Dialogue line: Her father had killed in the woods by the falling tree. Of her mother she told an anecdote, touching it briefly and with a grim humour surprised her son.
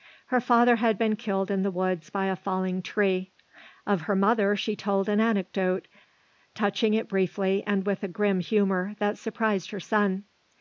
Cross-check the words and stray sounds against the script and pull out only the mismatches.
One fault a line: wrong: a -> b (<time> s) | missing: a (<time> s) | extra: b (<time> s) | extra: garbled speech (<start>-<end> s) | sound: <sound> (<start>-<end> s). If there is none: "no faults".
extra: been (1.0 s)
wrong: the -> a (2.2 s)
extra: that (9.0 s)